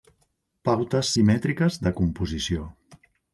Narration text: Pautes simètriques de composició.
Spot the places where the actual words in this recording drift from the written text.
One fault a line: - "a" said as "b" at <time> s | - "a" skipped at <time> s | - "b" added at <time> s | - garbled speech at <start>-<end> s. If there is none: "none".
none